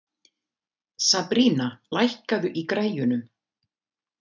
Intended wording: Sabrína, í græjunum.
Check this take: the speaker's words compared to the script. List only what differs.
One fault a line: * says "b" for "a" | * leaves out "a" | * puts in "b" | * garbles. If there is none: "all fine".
* puts in "lækkaðu"